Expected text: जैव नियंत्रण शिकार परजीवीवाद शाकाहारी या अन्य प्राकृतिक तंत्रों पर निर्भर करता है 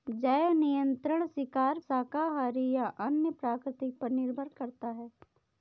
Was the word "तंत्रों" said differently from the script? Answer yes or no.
yes